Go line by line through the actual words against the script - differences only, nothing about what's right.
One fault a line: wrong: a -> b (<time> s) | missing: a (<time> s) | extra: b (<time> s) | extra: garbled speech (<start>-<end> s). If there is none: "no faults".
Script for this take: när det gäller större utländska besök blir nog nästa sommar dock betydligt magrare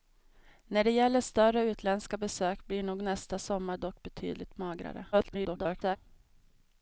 extra: garbled speech (5.1-6.0 s)